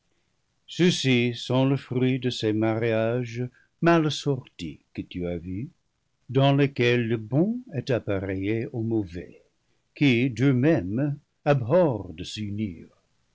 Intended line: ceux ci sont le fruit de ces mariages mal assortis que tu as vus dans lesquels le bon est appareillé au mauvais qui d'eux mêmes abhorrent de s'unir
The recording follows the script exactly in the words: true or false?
true